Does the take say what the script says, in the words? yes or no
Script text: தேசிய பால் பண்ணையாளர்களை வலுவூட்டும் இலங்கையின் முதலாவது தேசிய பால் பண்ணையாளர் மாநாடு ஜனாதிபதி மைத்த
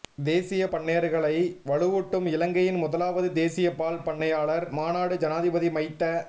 no